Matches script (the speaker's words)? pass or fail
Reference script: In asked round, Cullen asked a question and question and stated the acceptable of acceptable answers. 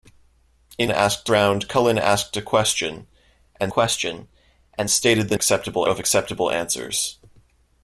pass